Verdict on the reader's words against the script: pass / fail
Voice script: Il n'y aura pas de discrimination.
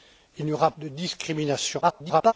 fail